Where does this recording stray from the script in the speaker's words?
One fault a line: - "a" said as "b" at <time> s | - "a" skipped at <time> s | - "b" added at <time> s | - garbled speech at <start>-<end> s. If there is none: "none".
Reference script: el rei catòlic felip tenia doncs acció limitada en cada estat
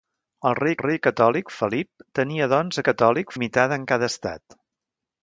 - "rei" added at 0.8 s
- "acció" said as "catòlic" at 2.9 s